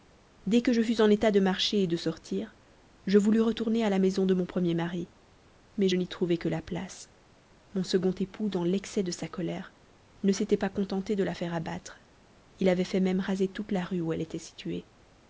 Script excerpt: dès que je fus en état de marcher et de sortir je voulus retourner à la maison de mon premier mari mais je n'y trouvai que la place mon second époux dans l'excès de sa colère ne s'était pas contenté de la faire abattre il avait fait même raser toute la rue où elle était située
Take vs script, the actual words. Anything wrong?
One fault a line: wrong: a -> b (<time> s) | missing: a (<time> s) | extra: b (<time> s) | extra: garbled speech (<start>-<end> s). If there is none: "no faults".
no faults